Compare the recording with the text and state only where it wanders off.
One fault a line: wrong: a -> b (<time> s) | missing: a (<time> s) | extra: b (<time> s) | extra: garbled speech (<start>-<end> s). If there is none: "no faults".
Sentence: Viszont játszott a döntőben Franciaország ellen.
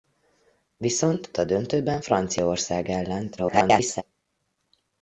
missing: játszott (1.3 s)
extra: garbled speech (3.4-4.0 s)